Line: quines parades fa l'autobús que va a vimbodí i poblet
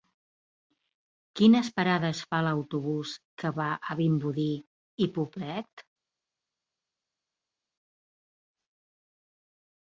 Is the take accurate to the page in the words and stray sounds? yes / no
yes